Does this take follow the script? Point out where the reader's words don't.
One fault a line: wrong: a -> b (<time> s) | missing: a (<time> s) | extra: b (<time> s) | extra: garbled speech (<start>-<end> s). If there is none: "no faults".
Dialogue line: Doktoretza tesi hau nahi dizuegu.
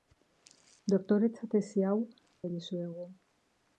no faults